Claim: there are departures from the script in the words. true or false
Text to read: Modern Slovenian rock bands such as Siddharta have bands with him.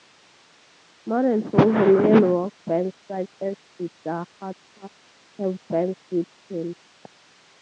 false